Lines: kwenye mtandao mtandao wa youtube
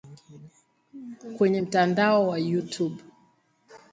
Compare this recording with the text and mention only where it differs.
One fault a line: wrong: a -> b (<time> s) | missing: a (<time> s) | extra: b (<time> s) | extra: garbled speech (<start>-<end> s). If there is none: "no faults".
missing: mtandao (2.3 s)